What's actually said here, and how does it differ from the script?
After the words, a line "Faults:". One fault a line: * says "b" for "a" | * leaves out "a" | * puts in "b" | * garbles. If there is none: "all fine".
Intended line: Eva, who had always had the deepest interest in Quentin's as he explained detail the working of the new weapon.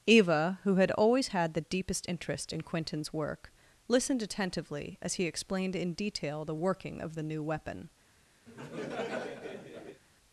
Eva, who had always had the deepest interest in Quentin's work, listened attentively as he explained in detail the working of the new weapon.
Faults:
* puts in "work listened attentively"
* puts in "in"